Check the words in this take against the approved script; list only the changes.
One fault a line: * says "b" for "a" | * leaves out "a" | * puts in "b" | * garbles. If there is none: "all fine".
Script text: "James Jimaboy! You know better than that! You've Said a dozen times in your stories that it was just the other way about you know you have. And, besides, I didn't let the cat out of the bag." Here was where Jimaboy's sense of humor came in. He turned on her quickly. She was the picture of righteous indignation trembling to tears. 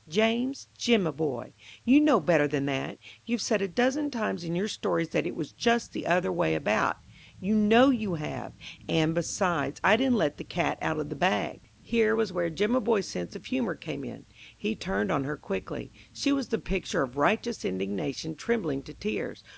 all fine